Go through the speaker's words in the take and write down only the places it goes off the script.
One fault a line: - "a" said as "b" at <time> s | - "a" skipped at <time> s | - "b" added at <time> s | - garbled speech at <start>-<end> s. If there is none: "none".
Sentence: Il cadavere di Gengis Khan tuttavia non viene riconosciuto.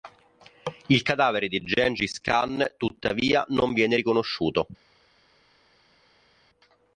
none